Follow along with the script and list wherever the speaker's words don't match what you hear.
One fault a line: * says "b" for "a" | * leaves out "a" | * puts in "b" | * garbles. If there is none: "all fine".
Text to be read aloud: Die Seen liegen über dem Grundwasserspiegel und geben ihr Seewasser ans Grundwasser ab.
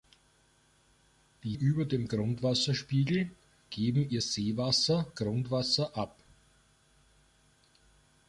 * leaves out "Seen liegen"
* leaves out "und"
* leaves out "ans"